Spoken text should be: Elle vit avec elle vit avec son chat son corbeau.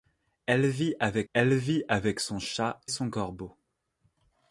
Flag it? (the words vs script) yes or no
no